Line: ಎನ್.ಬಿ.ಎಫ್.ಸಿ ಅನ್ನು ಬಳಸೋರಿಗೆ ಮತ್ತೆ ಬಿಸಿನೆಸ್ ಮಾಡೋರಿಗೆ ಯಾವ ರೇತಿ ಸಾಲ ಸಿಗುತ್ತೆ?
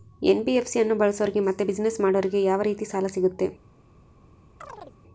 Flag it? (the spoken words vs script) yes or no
no